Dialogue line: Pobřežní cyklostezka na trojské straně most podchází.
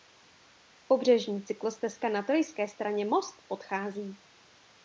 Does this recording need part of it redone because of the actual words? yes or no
no